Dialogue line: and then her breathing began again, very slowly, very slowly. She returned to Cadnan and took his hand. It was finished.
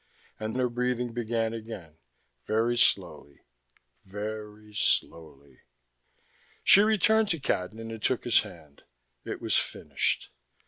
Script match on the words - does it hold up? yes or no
no